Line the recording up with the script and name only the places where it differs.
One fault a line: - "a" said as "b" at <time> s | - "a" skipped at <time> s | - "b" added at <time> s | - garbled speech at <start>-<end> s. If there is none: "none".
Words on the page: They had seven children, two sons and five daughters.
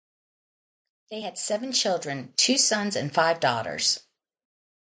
none